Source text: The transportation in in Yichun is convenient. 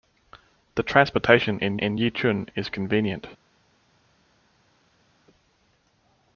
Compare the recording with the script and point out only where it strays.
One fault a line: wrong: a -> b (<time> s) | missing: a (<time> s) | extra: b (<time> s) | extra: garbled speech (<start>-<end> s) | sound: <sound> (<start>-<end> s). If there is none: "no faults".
no faults